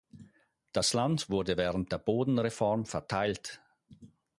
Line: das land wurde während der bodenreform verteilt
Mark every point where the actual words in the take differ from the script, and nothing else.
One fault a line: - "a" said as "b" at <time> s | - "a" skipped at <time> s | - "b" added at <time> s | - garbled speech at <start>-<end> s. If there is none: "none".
none